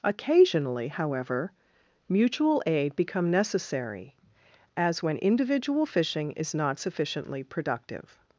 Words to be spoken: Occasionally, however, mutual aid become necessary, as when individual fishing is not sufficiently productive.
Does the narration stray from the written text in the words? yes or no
no